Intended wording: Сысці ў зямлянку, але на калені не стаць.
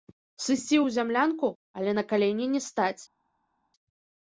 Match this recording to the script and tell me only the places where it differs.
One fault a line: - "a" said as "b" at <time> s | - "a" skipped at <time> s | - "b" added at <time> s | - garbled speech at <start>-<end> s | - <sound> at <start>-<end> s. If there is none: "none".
none